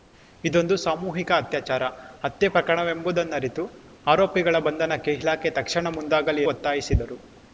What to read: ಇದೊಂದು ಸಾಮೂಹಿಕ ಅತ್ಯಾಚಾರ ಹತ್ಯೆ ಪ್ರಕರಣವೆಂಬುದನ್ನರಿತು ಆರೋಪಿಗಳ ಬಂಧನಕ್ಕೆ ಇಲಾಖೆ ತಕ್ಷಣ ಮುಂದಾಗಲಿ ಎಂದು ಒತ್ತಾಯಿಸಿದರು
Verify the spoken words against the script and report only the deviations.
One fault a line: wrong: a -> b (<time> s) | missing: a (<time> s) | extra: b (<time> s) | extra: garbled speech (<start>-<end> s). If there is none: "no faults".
missing: ಎಂದು (6.4 s)